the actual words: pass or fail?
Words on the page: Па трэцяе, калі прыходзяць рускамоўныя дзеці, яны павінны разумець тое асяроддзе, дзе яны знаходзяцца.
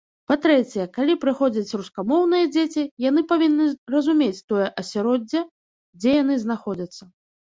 pass